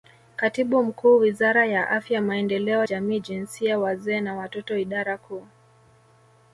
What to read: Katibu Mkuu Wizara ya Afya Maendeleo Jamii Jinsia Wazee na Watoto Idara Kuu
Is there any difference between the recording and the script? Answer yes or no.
no